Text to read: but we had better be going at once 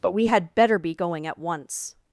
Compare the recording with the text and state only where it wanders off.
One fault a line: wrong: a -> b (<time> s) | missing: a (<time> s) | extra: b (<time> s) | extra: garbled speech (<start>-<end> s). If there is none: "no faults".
no faults